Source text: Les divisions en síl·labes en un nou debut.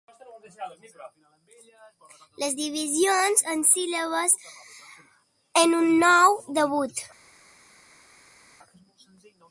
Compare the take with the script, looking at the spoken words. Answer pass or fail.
pass